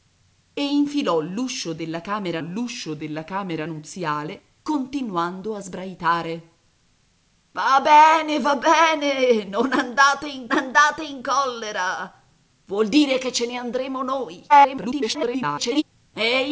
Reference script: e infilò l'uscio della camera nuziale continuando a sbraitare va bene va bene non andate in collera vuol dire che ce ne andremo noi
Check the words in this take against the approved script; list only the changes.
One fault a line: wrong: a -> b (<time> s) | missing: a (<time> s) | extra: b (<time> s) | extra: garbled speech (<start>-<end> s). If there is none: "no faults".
extra: l'uscio della camera (2.4 s)
extra: andate in (10.5 s)
extra: garbled speech (14.5-15.8 s)